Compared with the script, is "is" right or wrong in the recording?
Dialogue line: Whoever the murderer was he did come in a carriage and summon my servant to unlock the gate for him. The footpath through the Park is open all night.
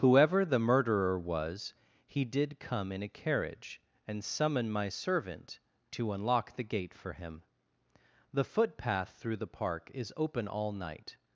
right